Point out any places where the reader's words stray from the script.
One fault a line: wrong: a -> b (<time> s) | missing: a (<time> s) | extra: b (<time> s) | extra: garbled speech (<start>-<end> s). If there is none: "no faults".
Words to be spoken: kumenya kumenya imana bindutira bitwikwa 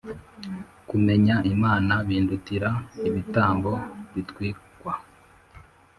missing: kumenya (1.4 s)
extra: ibitambo (3.1 s)